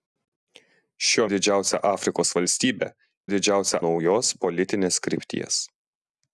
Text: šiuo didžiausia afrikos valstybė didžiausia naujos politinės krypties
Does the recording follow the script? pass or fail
pass